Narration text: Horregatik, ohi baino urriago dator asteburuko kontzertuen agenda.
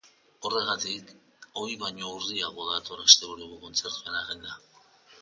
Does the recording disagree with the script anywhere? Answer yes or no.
no